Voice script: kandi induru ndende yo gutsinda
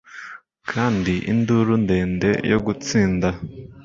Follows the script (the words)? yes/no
yes